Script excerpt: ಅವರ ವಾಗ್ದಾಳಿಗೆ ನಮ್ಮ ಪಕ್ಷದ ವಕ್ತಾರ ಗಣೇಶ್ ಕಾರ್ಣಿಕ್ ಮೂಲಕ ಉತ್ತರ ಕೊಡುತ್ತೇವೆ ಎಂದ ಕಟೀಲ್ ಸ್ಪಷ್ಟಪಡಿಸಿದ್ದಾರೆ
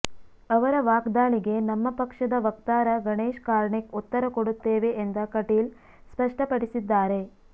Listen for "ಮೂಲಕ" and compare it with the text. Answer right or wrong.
wrong